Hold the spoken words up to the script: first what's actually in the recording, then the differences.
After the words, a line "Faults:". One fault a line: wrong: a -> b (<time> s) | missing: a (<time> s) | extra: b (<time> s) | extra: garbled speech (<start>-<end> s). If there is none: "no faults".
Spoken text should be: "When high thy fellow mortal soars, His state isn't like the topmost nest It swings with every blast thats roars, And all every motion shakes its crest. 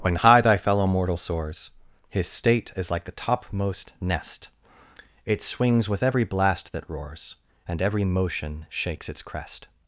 "When high thy fellow mortal soars, His state is like the topmost nest It swings with every blast that roars, And every motion shakes its crest.
Faults:
wrong: isn't -> is (2.8 s)
wrong: thats -> that (6.7 s)
missing: all (7.8 s)